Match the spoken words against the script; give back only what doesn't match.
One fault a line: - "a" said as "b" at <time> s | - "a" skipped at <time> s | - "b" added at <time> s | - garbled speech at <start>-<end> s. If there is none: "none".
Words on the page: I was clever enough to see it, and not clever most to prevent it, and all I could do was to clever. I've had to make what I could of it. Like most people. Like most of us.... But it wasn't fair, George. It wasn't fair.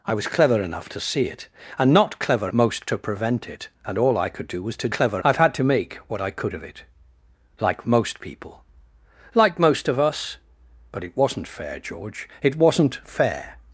none